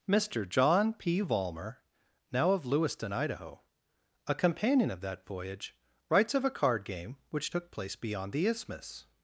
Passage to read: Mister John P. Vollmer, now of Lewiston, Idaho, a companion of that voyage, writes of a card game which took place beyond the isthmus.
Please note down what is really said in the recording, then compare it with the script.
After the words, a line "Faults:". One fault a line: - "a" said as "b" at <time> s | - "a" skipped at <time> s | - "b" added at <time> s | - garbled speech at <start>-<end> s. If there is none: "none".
Mister John P. Vollmer, now of Lewiston, Idaho, a companion of that voyage, writes of a card game which took place beyond the isthmus.
Faults:
none